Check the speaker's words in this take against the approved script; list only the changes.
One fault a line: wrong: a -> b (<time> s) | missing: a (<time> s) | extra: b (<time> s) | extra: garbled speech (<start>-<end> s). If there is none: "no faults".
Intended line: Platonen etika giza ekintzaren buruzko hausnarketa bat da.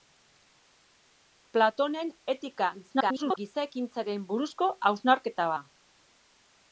extra: garbled speech (2.8-3.4 s)
missing: bat (5.5 s)